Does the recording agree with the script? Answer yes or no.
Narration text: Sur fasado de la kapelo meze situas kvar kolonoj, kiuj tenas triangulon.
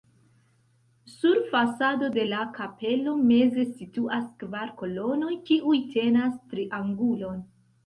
yes